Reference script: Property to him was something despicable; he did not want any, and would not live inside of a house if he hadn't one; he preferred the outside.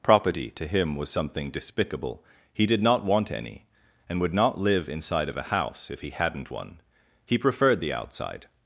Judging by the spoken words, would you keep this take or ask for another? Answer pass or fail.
pass